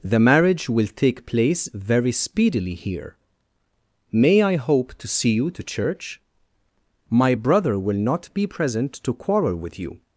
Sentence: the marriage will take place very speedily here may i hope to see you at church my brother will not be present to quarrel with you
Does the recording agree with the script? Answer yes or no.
no